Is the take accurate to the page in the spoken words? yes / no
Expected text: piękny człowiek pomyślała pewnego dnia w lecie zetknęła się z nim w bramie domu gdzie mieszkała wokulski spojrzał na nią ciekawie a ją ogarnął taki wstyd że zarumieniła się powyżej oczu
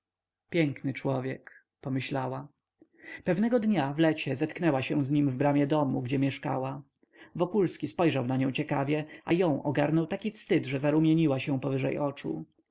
yes